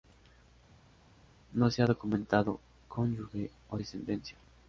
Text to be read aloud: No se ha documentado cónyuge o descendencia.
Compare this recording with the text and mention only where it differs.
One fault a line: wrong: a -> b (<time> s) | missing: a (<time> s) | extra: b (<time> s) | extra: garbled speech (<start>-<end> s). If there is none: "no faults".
no faults